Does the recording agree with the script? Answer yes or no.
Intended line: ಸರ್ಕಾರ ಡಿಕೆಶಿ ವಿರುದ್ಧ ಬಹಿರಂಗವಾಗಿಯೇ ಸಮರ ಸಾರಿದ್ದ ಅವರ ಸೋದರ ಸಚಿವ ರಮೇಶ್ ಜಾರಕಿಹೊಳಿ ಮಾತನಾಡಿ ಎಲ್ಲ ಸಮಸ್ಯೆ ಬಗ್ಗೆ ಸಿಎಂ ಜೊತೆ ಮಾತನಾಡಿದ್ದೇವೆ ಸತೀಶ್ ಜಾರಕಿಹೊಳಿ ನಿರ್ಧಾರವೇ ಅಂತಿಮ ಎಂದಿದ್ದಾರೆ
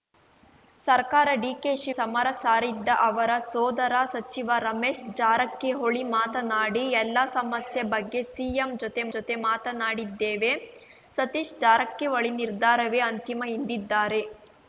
no